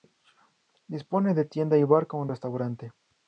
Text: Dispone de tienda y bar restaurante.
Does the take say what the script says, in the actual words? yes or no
no